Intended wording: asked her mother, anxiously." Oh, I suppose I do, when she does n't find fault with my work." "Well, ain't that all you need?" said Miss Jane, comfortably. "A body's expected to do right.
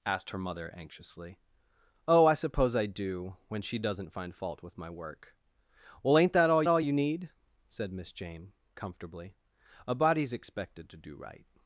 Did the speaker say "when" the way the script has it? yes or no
yes